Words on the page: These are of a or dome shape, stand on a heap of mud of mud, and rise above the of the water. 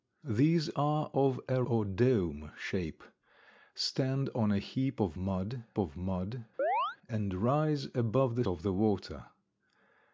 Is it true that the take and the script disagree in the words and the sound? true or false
true